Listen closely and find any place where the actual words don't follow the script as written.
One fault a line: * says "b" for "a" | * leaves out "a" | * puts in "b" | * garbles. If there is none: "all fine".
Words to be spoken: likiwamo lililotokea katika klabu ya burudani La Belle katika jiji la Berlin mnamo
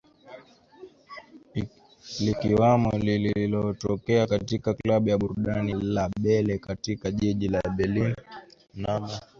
all fine